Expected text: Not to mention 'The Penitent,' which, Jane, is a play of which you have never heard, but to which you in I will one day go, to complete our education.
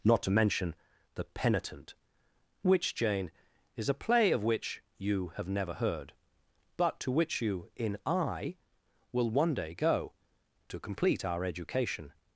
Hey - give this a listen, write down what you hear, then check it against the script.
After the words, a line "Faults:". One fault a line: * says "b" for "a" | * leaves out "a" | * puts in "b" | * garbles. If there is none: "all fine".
Not to mention 'The Penitent,' which, Jane, is a play of which you have never heard, but to which you in I will one day go, to complete our education.
Faults:
all fine